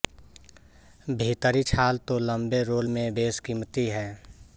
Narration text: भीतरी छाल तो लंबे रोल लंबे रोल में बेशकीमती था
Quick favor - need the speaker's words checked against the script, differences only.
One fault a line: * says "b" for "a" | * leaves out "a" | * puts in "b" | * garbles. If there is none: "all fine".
* leaves out "लंबे रोल"
* says "है" for "था"